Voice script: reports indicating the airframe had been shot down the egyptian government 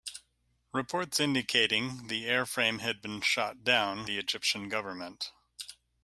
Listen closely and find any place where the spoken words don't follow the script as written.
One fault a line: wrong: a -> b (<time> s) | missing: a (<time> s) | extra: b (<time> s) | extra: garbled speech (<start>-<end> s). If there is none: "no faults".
no faults